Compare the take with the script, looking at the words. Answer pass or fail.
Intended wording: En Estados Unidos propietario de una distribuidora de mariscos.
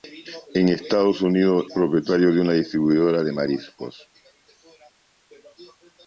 pass